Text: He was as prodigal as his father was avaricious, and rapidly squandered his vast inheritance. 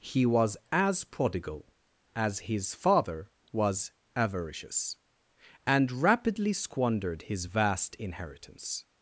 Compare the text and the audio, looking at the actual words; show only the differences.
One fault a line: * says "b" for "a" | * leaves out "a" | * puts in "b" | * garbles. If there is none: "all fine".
all fine